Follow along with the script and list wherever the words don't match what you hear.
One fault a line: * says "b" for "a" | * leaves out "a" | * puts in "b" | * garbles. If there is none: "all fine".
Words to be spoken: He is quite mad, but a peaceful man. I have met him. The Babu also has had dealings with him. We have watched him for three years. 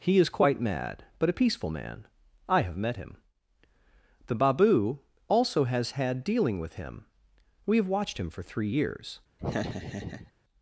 * says "dealing" for "dealings"